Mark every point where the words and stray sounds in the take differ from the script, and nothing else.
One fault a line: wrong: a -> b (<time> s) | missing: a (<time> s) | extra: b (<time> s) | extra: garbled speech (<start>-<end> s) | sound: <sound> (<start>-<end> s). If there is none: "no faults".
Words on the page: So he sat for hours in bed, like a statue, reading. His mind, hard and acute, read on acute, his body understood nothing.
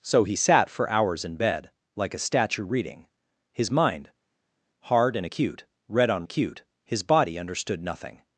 no faults